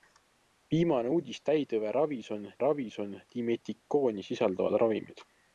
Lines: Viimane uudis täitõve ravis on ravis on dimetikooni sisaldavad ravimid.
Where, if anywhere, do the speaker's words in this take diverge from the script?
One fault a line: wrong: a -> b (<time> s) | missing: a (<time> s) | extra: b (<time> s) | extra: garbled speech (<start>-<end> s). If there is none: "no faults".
no faults